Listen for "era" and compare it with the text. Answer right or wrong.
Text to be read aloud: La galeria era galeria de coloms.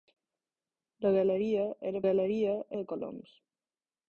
right